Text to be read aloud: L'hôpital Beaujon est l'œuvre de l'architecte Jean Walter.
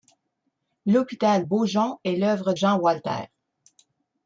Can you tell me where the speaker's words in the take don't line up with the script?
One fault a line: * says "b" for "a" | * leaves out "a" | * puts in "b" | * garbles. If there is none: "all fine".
* leaves out "de l'architecte"